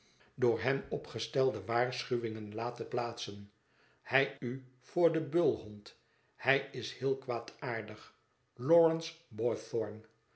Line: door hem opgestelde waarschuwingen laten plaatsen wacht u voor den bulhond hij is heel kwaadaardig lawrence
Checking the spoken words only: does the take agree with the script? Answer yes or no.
no